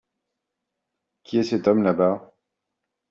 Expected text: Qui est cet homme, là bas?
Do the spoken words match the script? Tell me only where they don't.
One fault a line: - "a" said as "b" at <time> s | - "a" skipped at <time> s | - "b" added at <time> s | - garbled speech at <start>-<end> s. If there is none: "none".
none